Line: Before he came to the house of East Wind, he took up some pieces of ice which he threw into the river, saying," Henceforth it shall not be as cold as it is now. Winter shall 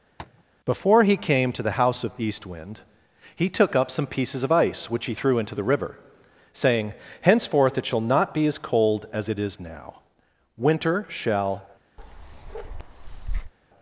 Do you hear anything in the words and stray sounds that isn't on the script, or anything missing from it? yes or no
yes